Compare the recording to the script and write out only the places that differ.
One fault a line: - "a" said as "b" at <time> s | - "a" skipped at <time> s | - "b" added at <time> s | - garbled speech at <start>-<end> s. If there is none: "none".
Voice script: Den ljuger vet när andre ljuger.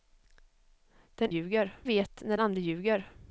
none